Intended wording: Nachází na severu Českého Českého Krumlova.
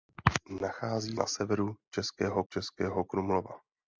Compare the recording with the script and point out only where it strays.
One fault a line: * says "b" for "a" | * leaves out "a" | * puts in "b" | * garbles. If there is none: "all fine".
all fine